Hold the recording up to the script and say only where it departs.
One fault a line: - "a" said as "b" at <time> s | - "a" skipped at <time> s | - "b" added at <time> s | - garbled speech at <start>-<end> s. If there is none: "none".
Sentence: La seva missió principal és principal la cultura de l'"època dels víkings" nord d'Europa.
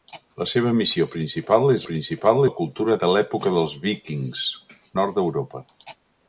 none